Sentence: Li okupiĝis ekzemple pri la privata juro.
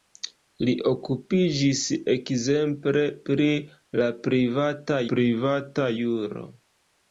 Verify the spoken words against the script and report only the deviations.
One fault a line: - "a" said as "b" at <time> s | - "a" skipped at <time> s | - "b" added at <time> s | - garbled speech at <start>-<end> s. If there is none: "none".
- "privata" added at 5.1 s